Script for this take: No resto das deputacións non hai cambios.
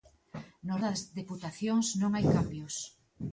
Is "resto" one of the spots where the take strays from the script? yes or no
yes